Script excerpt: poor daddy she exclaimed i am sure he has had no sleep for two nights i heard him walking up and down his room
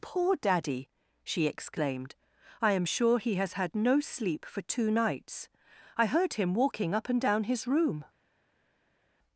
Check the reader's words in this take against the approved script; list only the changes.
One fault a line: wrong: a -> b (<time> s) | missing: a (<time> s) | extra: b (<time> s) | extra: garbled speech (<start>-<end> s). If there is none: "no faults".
no faults